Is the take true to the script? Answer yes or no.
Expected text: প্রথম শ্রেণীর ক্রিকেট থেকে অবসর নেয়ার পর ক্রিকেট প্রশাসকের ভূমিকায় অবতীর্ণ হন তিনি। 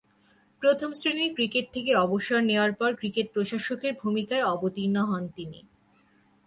yes